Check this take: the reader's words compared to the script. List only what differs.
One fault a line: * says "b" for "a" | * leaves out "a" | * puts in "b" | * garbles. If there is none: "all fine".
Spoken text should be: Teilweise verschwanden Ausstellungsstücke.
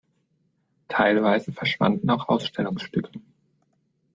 * puts in "auch"